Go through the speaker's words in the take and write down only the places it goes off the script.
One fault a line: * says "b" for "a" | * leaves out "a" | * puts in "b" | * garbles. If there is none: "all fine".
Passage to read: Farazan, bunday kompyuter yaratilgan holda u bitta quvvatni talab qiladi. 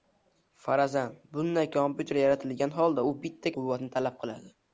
all fine